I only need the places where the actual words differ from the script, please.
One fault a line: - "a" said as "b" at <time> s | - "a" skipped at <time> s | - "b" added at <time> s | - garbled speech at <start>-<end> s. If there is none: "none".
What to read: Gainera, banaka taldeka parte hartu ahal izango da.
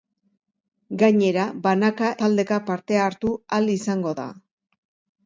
none